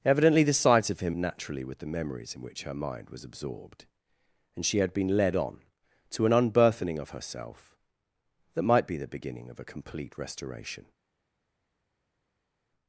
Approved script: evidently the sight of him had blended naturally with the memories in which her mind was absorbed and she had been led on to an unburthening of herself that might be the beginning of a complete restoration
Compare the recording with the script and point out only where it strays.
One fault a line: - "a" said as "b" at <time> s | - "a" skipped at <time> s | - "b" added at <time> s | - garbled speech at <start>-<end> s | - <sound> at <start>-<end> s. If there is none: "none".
- "had blended" skipped at 1.1 s